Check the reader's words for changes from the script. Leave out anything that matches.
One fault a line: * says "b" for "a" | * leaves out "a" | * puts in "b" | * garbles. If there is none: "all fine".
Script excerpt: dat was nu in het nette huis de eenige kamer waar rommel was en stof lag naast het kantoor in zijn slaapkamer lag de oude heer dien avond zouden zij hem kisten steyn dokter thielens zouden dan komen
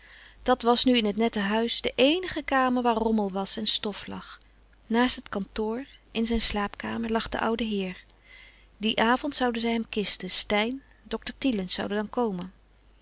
all fine